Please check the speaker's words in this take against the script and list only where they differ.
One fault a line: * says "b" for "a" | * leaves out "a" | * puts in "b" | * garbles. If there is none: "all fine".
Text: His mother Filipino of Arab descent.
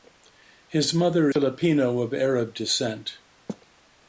all fine